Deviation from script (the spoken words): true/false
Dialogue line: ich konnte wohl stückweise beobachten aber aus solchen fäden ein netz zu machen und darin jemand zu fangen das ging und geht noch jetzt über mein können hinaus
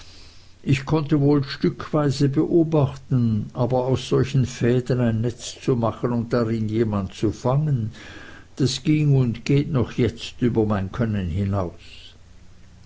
false